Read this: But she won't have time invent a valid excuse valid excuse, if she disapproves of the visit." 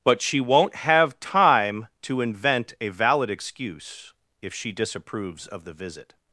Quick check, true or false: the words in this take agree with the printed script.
false